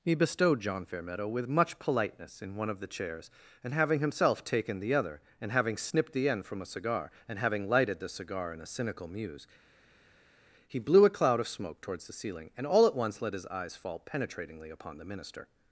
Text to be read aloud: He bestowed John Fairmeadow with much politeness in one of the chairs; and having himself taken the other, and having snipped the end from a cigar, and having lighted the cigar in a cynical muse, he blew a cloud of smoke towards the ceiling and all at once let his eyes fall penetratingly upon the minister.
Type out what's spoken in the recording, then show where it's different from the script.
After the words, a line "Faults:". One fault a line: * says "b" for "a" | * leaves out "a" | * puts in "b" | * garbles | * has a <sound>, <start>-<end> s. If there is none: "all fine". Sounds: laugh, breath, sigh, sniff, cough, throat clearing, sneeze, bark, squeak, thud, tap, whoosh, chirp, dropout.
He bestowed John Fairmeadow with much politeness in one of the chairs; and having himself taken the other, and having snipped the end from a cigar, and having lighted the cigar in a cynical muse, he blew a cloud of smoke towards the ceiling and all at once let his eyes fall penetratingly upon the minister.
Faults:
all fine